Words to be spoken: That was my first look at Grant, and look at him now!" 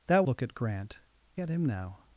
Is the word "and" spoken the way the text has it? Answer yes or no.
no